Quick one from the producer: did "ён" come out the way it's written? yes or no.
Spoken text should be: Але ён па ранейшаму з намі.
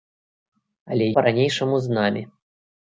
no